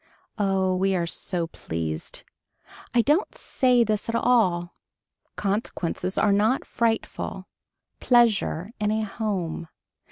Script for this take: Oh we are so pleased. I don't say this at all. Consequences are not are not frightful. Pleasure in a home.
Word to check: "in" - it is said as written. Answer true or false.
true